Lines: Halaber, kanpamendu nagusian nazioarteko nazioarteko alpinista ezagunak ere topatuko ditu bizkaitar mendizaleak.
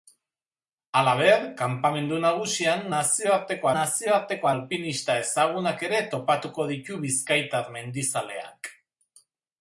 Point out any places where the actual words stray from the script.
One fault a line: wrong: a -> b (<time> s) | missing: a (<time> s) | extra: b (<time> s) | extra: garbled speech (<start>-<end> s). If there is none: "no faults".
no faults